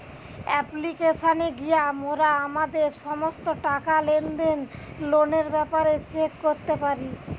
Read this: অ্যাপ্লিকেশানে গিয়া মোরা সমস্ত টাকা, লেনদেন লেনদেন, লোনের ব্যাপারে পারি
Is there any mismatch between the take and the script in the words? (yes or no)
yes